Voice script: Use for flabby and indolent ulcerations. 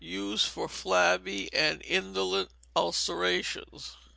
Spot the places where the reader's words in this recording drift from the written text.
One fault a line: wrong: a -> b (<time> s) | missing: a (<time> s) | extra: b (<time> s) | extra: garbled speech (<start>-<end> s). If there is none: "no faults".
no faults